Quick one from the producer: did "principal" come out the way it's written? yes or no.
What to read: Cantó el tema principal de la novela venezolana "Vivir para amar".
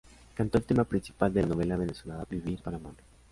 yes